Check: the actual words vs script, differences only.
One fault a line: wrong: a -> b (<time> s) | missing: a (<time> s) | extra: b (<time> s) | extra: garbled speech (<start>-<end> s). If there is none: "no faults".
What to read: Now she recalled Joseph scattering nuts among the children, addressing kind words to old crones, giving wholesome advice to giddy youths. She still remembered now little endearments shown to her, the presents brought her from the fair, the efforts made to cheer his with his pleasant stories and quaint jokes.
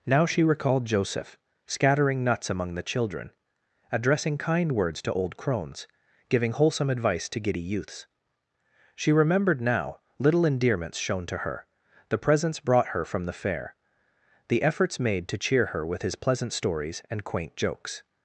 missing: still (9.1 s)
wrong: his -> her (15.7 s)